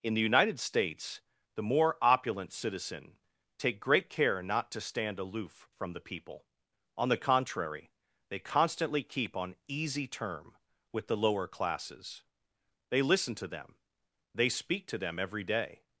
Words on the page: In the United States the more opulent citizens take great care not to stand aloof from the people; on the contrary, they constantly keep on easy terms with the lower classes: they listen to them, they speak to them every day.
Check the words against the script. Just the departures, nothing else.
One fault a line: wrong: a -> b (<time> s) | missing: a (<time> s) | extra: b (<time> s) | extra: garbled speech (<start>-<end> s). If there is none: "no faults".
wrong: citizens -> citizen (2.5 s)
wrong: terms -> term (10.1 s)